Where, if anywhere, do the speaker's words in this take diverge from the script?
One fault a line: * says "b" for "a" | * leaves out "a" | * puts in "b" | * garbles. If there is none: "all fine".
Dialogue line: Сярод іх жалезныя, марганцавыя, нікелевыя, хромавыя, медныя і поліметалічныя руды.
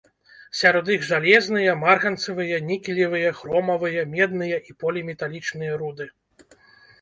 all fine